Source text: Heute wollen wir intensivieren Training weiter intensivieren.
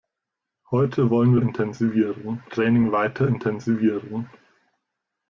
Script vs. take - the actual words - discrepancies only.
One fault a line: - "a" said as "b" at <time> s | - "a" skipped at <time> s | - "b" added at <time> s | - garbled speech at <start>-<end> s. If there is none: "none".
none